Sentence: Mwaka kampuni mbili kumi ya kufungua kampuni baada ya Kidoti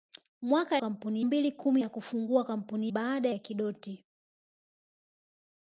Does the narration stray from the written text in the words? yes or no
no